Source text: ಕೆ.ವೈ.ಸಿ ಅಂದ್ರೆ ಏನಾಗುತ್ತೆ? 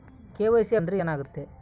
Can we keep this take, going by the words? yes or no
yes